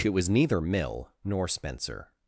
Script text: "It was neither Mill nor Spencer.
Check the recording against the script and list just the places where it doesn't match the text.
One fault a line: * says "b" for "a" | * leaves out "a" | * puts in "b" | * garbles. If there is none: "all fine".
all fine